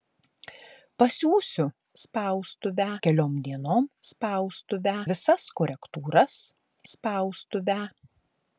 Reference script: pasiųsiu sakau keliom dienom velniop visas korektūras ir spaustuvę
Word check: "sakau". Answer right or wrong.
wrong